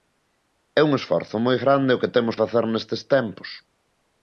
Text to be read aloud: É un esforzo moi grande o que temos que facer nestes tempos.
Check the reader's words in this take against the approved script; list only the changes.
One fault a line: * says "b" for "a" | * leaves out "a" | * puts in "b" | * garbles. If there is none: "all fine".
* leaves out "que"